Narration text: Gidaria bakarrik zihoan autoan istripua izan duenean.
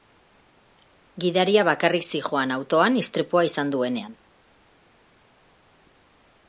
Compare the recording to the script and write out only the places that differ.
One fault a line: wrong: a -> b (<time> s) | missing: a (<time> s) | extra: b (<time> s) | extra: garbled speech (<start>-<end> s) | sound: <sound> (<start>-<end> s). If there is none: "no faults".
no faults